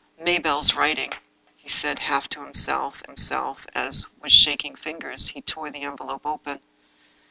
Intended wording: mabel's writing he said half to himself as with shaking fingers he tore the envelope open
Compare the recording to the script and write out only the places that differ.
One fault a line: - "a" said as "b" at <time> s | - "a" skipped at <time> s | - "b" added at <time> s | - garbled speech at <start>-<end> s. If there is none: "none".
- "himself" added at 3.1 s